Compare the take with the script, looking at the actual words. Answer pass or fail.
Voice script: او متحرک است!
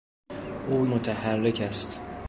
pass